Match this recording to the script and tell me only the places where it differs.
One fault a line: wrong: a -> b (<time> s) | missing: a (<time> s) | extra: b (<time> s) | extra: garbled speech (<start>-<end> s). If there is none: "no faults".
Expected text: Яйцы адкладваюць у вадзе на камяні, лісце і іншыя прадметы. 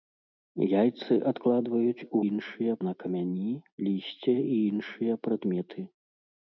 wrong: вадзе -> іншыя (2.3 s)